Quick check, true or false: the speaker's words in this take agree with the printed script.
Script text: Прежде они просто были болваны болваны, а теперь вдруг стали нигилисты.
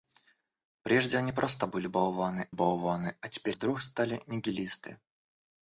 true